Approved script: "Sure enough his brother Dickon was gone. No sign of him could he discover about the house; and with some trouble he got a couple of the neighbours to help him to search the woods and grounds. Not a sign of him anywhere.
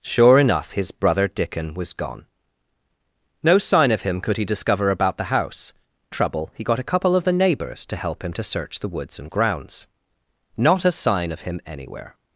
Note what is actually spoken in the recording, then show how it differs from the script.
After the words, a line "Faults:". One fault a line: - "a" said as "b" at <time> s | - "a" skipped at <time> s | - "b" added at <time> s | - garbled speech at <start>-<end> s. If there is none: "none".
"Sure enough his brother Dickon was gone. No sign of him could he discover about the house; trouble he got a couple of the neighbours to help him to search the woods and grounds. Not a sign of him anywhere.
Faults:
- "and with some" skipped at 5.7 s